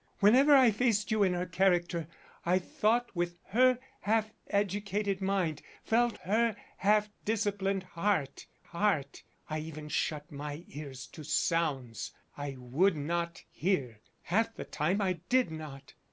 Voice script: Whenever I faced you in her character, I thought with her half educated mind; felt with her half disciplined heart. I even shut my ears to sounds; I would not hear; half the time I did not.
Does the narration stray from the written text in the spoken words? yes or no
yes